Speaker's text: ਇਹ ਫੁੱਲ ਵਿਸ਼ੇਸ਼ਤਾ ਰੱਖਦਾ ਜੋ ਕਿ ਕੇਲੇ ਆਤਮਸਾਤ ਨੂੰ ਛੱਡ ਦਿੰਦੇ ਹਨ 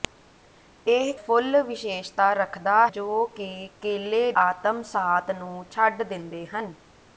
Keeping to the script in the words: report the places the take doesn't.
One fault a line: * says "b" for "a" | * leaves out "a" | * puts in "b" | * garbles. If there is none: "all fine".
all fine